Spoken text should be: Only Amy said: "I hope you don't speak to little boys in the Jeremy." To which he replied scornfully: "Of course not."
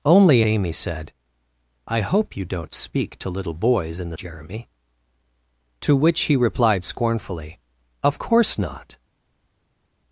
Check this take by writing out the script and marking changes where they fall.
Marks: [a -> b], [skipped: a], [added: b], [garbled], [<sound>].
Only Amy said: "I hope you don't speak to little boys in the Jeremy." To which he replied scornfully: "Of course not."